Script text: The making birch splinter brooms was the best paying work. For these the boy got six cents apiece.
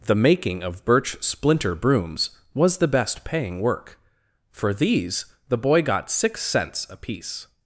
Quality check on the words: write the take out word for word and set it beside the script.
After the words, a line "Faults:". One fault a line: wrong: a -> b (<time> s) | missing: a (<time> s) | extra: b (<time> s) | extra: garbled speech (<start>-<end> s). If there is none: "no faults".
The making of birch splinter brooms was the best paying work. For these the boy got six cents apiece.
Faults:
extra: of (0.6 s)